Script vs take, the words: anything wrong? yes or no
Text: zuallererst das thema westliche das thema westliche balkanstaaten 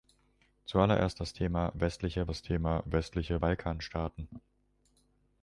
no